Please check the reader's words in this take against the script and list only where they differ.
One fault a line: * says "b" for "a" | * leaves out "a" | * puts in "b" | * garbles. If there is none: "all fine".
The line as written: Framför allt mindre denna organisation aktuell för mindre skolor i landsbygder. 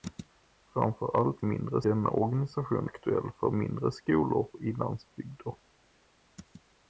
all fine